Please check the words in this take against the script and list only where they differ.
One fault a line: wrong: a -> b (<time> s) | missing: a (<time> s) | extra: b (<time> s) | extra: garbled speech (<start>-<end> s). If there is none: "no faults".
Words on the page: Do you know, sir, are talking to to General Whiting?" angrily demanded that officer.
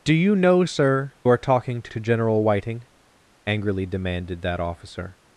no faults